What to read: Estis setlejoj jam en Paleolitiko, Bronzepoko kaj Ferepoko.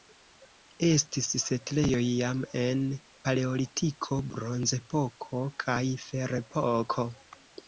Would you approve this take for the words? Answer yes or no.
yes